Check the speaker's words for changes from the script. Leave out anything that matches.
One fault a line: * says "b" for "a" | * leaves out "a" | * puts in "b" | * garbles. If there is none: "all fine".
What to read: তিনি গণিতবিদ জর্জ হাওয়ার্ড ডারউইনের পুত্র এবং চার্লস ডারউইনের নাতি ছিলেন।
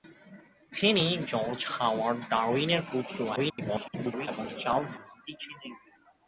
* leaves out "গণিতবিদ"
* garbles
* leaves out "ডারউইনের"